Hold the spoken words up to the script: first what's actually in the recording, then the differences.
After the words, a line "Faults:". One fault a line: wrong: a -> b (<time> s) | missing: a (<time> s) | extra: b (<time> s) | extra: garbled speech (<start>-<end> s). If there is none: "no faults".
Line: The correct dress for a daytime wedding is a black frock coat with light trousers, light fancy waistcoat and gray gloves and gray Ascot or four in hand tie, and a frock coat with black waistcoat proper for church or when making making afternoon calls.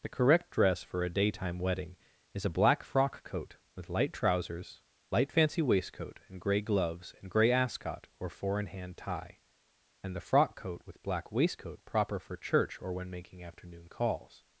The correct dress for a daytime wedding is a black frock coat with light trousers, light fancy waistcoat and gray gloves and gray Ascot or four in hand tie, and the frock coat with black waistcoat proper for church or when making afternoon calls.
Faults:
wrong: a -> the (10.2 s)
missing: making (13.4 s)